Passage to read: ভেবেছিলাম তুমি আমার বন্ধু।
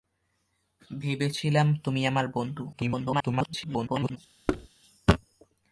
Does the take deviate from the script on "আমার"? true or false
false